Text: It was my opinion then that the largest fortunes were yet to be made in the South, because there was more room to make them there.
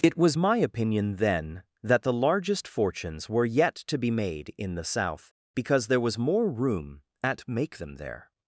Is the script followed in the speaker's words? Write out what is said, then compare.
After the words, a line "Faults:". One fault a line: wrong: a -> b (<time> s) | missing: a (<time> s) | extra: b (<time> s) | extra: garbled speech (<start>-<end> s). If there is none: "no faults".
It was my opinion then that the largest fortunes were yet to be made in the South, because there was more room at make them there.
Faults:
wrong: to -> at (7.2 s)